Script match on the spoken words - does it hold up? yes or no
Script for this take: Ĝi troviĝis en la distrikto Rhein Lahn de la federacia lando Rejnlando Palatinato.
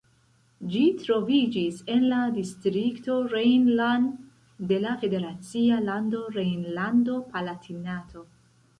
yes